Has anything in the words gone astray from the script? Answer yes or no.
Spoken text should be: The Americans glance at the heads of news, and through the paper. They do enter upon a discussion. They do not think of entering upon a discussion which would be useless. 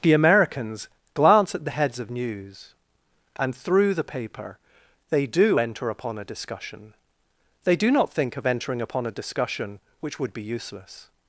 no